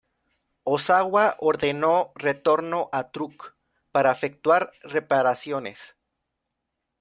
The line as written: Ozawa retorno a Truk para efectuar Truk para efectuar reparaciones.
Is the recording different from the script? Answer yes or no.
yes